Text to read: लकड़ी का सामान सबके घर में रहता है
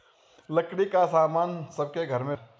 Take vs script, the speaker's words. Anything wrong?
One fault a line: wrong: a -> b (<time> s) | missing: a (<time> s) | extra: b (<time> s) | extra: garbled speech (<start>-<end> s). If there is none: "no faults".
missing: रहता (2.4 s)